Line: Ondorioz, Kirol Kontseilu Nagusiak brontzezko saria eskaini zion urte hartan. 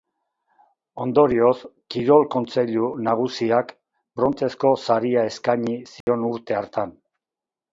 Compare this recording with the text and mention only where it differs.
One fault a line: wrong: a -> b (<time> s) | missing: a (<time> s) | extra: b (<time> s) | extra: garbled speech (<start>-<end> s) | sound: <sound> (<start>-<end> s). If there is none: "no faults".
sound: dropout (6.0-6.1 s)